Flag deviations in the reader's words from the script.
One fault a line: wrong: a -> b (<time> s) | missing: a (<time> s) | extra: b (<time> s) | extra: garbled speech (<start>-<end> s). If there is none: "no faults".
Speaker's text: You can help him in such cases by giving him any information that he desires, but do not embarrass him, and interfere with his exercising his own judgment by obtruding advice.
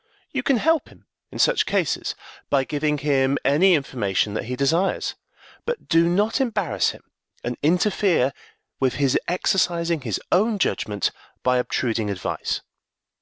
no faults